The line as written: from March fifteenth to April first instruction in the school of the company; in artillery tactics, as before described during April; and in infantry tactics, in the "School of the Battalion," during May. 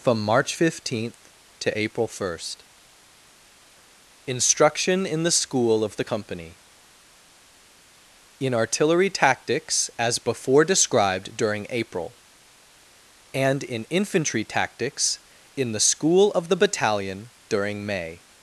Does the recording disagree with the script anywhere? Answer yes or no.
no